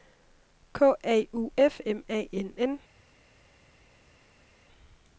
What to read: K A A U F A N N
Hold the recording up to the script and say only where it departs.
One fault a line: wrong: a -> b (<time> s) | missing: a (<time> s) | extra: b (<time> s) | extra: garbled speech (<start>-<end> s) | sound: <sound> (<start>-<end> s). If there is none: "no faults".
missing: A (1.3 s)
extra: M (1.9 s)